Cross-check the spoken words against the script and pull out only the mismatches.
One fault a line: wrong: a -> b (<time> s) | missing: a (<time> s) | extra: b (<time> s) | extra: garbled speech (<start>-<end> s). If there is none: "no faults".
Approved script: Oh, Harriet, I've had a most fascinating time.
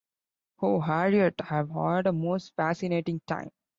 no faults